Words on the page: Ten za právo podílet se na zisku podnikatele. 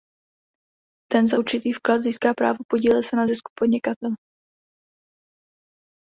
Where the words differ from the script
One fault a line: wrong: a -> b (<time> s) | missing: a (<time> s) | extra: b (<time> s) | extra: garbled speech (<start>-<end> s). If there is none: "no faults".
extra: určitý vklad získá (1.4 s)